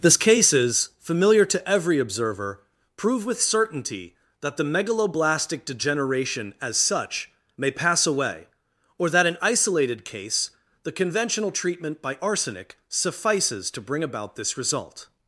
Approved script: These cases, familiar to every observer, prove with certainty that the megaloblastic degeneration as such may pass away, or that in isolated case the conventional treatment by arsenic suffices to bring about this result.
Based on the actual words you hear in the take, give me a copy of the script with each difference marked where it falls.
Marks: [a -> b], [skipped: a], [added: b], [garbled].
These cases, familiar to every observer, prove with certainty that the megaloblastic degeneration as such may pass away, or that in isolated case the conventional treatment by arsenic suffices to bring about this result.